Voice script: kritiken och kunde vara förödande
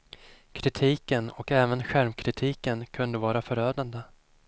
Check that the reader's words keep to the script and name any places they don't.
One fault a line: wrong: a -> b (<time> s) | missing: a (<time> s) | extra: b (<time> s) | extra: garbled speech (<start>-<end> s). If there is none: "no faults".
extra: även självkritiken (1.5 s)